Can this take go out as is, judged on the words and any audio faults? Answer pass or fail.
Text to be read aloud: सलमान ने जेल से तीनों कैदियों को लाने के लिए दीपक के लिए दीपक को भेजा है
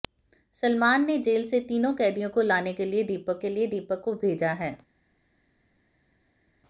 pass